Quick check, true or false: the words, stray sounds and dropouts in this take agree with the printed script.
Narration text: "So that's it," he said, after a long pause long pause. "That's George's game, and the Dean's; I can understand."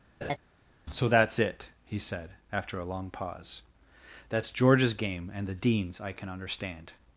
false